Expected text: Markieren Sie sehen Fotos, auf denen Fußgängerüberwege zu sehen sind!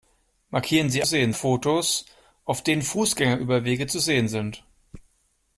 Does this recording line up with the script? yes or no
yes